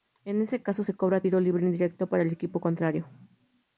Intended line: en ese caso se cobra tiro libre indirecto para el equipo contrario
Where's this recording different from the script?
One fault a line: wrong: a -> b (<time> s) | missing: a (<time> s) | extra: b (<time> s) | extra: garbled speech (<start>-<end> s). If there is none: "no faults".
no faults